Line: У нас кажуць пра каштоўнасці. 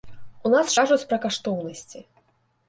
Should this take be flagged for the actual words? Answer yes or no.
no